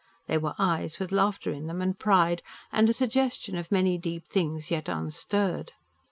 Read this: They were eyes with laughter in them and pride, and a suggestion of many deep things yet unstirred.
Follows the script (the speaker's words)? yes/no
yes